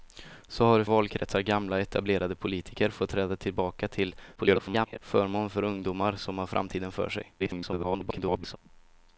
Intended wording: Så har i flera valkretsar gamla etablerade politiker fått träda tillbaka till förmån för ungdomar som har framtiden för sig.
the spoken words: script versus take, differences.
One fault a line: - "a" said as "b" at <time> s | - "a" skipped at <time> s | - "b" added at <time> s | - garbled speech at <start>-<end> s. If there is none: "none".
- "flera" skipped at 0.8 s
- garbled speech at 4.4-5.0 s
- garbled speech at 7.4-8.6 s